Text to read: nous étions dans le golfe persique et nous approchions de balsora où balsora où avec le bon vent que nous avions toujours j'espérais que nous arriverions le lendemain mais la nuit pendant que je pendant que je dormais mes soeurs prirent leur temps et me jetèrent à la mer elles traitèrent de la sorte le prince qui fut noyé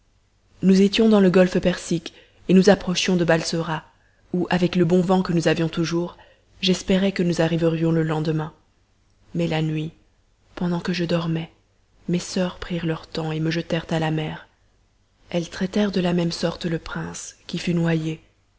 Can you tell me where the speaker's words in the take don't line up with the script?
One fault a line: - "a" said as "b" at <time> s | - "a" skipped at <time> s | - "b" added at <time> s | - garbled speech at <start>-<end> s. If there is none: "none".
- "balsora où" skipped at 4.5 s
- "pendant que je" skipped at 11.0 s
- "même" added at 16.1 s